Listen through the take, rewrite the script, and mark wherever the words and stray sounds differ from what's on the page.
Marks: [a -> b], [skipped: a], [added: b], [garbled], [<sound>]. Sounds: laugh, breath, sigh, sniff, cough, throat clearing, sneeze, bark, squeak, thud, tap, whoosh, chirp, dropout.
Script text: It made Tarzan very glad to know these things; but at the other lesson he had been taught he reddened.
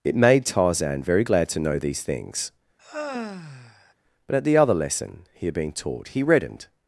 It made Tarzan very glad to know these things; [sigh] but at the other lesson he had been taught he reddened.